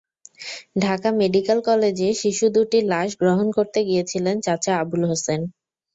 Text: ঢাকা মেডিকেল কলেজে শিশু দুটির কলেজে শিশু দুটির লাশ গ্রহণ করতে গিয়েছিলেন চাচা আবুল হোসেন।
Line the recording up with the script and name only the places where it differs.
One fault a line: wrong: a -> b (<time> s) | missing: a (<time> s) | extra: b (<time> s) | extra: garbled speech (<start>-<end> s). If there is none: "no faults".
missing: কলেজে শিশু দুটির (2.9 s)